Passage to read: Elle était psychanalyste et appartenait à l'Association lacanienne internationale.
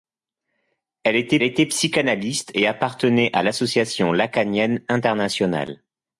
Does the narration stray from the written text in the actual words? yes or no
yes